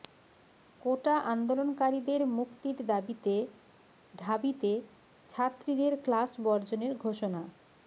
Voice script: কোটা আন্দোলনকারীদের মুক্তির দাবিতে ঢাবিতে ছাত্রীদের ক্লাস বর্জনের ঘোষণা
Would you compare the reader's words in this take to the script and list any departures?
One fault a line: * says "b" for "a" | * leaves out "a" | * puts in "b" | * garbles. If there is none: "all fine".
all fine